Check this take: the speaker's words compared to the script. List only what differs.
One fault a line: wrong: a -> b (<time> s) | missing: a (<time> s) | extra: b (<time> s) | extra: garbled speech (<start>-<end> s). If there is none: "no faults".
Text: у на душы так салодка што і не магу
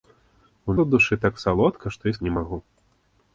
no faults